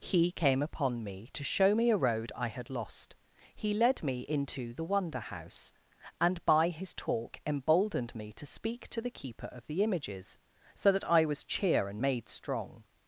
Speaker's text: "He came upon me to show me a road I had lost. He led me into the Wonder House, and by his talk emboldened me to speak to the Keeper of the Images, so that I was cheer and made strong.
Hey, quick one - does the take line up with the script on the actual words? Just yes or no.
yes